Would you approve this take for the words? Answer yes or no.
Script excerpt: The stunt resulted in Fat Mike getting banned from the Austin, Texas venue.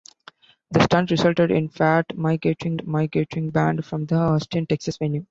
no